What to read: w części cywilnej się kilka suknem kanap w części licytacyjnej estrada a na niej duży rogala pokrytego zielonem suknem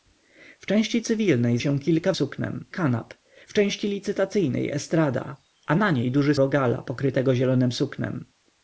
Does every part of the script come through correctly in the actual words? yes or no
yes